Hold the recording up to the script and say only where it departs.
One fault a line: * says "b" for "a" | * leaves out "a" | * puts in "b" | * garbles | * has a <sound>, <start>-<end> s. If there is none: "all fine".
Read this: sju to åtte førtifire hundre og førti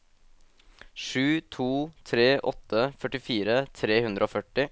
* puts in "tre"
* puts in "tre"